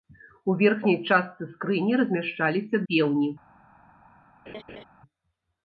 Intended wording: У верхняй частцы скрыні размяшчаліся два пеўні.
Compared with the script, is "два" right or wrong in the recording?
wrong